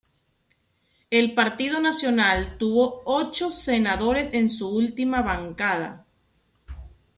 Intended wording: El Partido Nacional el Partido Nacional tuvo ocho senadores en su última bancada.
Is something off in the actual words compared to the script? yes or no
yes